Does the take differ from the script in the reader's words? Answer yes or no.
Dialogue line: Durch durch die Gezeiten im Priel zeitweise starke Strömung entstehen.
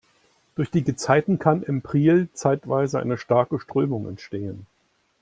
yes